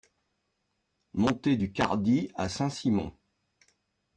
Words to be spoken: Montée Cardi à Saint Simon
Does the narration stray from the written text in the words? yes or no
yes